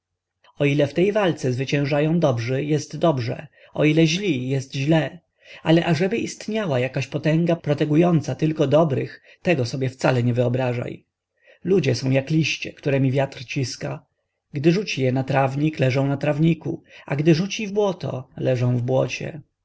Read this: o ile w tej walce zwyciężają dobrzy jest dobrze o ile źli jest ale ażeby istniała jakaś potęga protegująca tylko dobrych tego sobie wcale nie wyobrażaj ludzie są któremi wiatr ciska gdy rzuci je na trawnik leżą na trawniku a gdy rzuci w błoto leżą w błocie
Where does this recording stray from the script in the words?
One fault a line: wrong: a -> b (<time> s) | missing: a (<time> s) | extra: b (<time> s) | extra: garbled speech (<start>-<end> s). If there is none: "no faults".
extra: źle (4.8 s)
extra: jak liście (12.1 s)